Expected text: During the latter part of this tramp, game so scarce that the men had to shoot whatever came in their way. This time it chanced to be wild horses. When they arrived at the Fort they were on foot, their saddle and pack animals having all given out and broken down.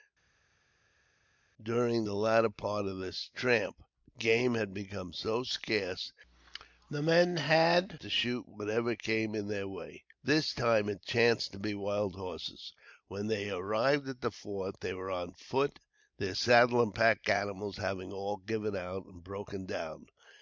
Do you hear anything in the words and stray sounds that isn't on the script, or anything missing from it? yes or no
yes